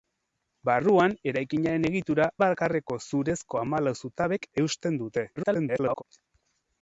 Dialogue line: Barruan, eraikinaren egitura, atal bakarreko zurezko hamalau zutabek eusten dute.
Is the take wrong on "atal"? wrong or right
wrong